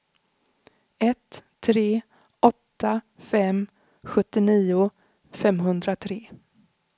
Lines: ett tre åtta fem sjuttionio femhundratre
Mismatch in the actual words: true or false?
false